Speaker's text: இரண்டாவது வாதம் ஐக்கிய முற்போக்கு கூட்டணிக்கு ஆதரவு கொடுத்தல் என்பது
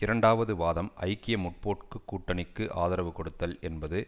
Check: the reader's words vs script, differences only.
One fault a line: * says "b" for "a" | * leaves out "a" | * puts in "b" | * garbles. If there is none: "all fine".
all fine